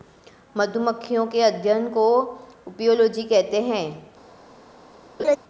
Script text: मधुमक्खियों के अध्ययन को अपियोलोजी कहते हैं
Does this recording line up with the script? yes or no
yes